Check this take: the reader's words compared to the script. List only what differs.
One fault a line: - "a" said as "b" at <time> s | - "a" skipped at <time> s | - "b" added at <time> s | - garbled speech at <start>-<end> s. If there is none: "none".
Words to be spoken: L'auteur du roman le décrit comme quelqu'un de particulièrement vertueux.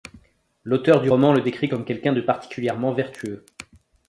none